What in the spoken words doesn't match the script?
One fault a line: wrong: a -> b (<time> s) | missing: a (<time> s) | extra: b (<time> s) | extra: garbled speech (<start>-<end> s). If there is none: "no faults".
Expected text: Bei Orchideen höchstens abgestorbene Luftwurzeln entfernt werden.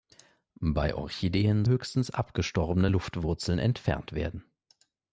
no faults